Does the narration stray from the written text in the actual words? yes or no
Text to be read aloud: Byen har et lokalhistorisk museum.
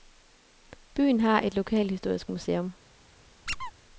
no